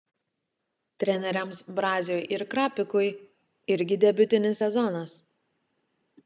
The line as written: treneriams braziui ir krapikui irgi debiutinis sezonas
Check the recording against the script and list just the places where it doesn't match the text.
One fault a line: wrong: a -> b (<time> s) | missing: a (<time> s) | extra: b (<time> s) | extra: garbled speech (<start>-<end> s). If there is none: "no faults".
no faults